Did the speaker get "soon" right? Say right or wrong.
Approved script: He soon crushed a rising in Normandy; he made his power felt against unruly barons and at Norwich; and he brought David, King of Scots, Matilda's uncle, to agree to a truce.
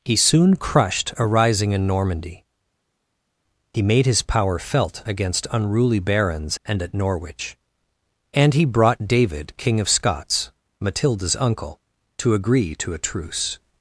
right